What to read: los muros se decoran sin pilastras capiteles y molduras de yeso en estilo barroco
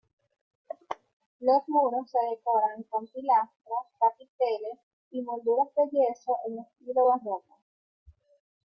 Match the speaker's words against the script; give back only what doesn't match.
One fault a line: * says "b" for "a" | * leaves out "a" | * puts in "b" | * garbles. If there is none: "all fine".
* says "con" for "sin"